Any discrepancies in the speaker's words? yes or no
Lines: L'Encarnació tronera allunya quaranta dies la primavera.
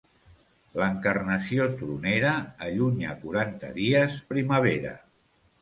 yes